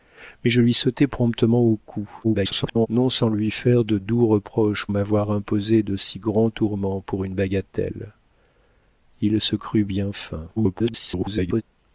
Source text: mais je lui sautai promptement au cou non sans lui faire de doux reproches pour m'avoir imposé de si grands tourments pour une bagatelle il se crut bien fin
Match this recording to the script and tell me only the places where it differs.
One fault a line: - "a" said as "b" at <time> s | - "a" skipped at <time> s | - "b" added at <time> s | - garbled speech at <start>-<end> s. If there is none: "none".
- garbled speech at 2.2-2.9 s
- "pour" skipped at 4.9 s
- garbled speech at 10.6-11.6 s